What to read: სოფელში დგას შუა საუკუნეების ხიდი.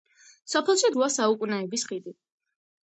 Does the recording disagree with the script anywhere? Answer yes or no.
yes